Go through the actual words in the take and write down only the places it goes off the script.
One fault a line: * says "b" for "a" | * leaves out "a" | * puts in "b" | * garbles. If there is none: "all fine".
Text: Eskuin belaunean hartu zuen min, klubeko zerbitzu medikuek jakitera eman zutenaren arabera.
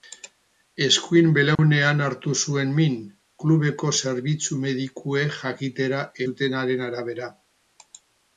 * leaves out "eman"